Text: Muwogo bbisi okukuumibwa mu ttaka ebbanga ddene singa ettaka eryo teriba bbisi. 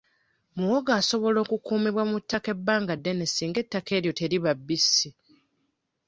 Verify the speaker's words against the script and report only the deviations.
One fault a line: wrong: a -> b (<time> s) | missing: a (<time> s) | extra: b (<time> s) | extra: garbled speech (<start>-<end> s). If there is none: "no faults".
wrong: bbisi -> asobola (1.0 s)